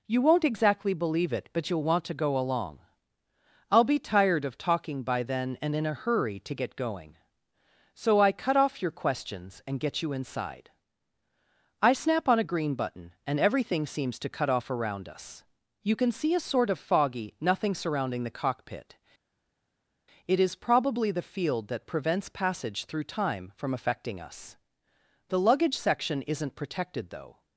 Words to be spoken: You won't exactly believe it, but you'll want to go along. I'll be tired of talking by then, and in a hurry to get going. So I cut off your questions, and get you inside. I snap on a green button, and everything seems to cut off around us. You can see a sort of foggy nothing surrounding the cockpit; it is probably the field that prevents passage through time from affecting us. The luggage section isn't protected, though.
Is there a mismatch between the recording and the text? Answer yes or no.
no